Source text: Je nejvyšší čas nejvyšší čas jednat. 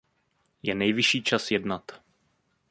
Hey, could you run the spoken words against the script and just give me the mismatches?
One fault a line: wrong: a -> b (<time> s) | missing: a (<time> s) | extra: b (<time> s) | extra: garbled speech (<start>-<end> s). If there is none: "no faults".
missing: nejvyšší čas (1.5 s)